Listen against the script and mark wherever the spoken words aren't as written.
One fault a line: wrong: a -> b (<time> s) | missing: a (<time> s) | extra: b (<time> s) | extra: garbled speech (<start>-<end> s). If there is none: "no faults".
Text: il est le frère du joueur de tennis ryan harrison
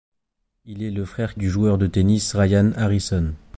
no faults